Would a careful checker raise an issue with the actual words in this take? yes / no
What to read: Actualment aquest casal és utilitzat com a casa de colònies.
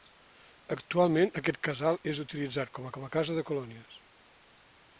yes